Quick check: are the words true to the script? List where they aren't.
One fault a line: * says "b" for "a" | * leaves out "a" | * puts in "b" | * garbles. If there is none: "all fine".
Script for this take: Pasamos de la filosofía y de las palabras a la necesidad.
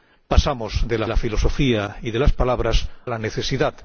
* puts in "la"
* leaves out "a"